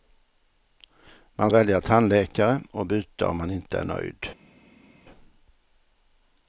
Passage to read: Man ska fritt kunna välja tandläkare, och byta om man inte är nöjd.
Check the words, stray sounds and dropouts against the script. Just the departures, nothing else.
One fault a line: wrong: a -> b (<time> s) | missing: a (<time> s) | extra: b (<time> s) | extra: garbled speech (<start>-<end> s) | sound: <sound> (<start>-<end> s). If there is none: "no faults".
missing: ska fritt kunna (1.5 s)